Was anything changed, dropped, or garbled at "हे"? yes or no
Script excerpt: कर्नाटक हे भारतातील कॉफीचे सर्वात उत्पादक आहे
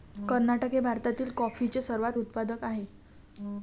no